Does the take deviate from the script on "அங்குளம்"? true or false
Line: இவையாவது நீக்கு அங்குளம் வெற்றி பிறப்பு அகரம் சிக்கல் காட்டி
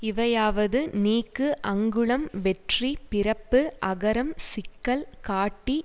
false